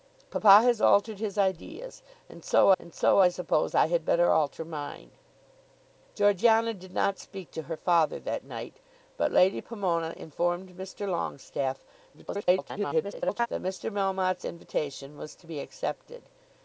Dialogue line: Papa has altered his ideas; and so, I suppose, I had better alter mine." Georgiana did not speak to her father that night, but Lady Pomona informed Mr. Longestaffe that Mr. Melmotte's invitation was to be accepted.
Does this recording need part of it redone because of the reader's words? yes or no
yes